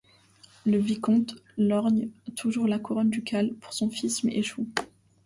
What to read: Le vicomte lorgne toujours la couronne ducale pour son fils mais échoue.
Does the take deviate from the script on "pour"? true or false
false